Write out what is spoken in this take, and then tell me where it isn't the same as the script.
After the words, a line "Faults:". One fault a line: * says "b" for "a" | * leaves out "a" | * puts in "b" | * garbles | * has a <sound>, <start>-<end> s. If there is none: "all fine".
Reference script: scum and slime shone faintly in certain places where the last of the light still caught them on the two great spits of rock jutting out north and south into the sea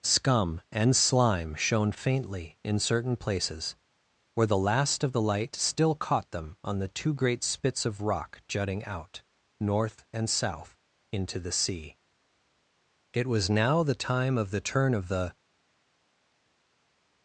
scum and slime shone faintly in certain places where the last of the light still caught them on the two great spits of rock jutting out north and south into the sea it was now the time of the turn of the
Faults:
* puts in "it was now the time of the turn of the"